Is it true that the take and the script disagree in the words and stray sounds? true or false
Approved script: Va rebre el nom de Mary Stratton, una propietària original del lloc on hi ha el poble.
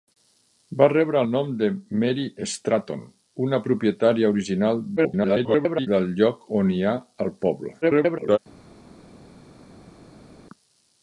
true